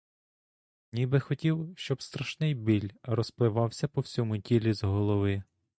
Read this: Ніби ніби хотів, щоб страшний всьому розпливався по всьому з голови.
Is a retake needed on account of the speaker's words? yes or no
yes